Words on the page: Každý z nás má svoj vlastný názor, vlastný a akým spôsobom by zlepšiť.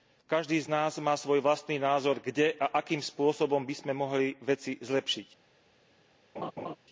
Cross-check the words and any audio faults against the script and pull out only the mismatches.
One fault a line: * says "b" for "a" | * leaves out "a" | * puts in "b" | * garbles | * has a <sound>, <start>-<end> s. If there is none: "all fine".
* says "kde" for "vlastný"
* puts in "sme mohli veci"
* has a laugh, 6.4-6.8 s